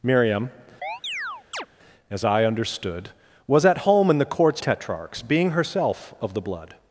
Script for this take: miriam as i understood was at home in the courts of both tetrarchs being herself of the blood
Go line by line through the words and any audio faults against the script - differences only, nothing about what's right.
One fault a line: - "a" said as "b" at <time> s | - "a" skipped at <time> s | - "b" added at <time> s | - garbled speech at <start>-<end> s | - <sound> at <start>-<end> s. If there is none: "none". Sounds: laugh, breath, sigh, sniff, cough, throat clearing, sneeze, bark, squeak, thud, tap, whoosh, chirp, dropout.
- chirp at 0.8-1.7 s
- "of both" skipped at 4.6 s